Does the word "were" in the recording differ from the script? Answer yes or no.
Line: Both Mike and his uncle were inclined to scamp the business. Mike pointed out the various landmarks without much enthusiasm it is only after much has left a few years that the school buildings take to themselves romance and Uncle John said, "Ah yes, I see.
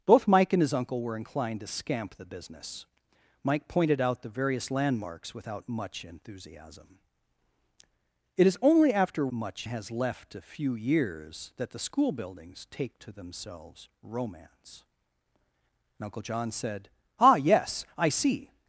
no